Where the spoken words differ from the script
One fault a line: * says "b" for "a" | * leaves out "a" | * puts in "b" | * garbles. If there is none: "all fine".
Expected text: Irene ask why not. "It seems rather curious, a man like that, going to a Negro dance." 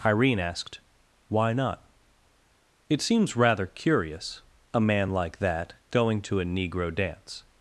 * says "asked" for "ask"